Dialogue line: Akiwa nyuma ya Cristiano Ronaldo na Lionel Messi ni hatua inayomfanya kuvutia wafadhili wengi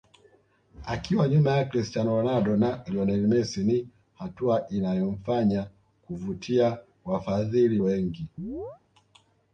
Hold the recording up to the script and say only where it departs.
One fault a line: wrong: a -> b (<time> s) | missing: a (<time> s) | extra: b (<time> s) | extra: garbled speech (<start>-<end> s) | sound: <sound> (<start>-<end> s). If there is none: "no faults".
sound: chirp (8.4-8.8 s)